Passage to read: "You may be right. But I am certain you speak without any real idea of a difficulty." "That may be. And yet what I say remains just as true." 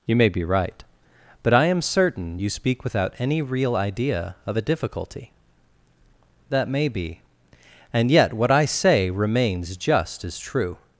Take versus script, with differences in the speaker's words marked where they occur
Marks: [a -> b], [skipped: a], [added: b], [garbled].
"You may be right. But I am certain you speak without any real idea of a difficulty." "That may be. And yet what I say remains just as true."